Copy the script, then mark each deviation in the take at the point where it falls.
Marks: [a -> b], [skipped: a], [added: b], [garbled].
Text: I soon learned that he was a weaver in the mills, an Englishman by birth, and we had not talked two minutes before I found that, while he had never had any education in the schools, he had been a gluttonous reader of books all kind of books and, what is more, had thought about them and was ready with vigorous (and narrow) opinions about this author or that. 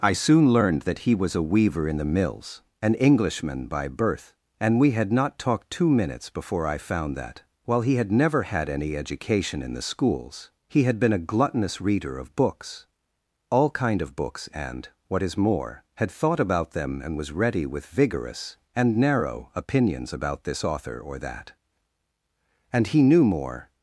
I soon learned that he was a weaver in the mills, an Englishman by birth, and we had not talked two minutes before I found that, while he had never had any education in the schools, he had been a gluttonous reader of books all kind of books and, what is more, had thought about them and was ready with vigorous (and narrow) opinions about this author or that. [added: And he knew more]